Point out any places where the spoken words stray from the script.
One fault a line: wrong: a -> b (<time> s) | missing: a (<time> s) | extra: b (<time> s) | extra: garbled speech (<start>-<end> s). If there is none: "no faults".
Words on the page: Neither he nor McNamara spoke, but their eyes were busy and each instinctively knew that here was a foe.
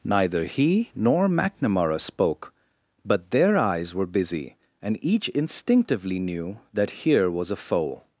no faults